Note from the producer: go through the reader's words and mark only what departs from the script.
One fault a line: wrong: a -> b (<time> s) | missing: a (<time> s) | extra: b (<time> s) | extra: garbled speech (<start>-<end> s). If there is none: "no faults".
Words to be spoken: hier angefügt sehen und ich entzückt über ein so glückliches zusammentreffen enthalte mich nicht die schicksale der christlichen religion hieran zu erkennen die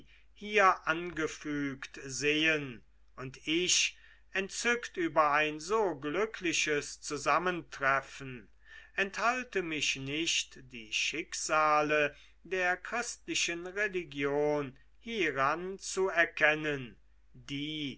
no faults